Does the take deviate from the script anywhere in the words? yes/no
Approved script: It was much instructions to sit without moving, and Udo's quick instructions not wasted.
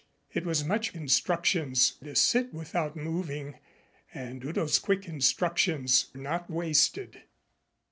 no